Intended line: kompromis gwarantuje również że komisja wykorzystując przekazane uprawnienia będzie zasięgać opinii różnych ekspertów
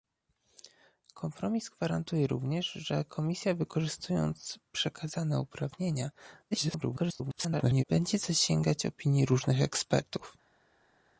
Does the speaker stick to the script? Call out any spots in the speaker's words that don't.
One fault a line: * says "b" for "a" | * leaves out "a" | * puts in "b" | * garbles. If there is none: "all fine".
* garbles